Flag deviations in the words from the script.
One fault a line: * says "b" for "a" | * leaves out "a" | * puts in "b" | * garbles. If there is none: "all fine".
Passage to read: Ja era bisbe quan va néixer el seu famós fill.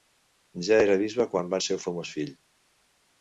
* leaves out "néixer"